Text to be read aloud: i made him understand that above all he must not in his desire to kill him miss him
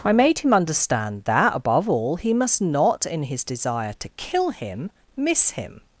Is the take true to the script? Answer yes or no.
yes